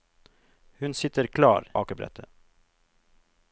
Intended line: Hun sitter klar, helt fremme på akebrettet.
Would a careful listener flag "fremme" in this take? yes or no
yes